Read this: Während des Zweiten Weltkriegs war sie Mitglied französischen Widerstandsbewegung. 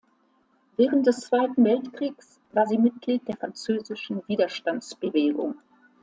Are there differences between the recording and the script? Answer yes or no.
yes